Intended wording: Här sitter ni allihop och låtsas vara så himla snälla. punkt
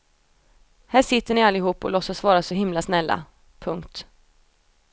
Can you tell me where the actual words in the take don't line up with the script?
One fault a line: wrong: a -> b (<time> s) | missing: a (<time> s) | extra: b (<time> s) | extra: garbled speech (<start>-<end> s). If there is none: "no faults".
no faults